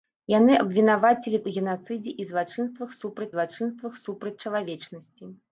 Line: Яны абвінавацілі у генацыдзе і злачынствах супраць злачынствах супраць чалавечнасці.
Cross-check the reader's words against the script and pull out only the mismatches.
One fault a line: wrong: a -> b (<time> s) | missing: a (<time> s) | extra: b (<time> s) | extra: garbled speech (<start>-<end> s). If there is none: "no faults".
no faults